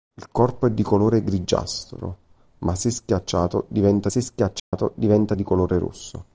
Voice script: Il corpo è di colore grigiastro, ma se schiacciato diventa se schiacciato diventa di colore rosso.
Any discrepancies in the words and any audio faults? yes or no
yes